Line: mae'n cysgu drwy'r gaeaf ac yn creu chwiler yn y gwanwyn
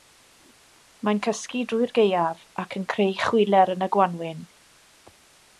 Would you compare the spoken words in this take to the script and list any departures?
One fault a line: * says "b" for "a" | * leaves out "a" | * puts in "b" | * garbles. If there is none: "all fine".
all fine